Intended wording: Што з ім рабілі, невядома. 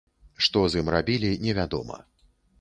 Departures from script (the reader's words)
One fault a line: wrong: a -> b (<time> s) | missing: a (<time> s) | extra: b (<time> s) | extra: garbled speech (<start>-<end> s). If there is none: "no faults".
no faults